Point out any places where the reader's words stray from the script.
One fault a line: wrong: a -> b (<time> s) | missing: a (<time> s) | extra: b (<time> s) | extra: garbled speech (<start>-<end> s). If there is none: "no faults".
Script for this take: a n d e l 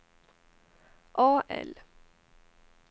missing: n d e (1.4 s)